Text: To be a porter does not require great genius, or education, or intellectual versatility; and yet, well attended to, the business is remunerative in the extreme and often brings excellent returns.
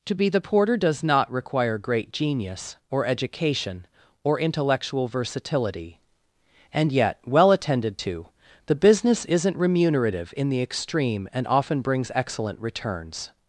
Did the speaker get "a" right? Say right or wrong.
wrong